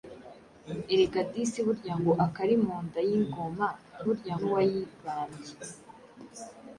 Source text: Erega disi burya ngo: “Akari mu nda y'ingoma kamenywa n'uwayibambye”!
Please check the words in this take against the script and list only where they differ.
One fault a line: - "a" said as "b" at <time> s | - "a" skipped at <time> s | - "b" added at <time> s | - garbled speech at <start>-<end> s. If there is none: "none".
- "kamenywa" said as "burya" at 4.1 s